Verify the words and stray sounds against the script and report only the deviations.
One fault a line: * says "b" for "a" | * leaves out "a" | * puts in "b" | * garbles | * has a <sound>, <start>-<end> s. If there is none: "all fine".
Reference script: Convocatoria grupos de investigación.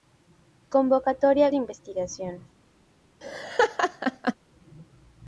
* leaves out "grupos"
* has a laugh, 3.2-4.3 s